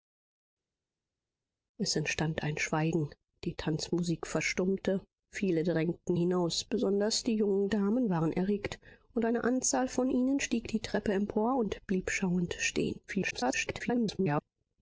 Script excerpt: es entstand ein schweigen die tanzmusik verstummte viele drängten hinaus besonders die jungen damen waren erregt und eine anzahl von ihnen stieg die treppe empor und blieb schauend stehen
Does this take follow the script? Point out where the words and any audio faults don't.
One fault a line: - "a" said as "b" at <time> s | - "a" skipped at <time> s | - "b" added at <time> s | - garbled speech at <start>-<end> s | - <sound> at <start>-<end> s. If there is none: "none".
- garbled speech at 13.1-14.4 s